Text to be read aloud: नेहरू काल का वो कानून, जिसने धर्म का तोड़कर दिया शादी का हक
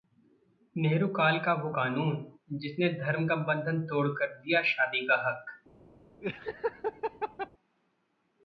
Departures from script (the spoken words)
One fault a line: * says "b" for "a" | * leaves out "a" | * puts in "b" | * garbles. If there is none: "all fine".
* puts in "बंधन"